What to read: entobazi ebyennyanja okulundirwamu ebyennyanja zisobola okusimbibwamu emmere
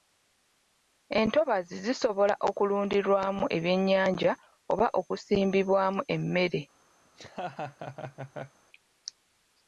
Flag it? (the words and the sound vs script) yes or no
yes